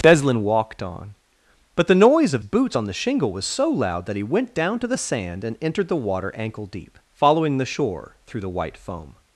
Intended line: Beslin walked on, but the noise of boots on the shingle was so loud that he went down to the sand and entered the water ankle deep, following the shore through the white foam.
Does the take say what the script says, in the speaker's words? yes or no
yes